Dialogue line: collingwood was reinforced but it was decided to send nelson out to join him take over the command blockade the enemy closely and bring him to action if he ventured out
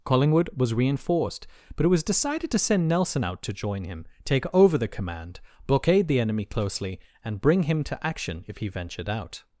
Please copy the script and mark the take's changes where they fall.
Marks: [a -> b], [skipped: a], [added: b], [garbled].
collingwood was reinforced but it was decided to send nelson out to join him take over the command blockade the enemy closely and bring him to action if he ventured out